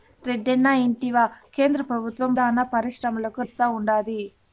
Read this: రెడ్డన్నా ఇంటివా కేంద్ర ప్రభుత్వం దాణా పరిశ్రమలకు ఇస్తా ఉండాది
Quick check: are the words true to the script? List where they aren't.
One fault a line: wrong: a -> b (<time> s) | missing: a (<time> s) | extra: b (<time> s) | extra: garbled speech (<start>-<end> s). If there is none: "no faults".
no faults